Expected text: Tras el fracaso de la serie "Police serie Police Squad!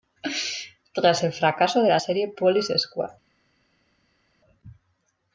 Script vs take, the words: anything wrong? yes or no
yes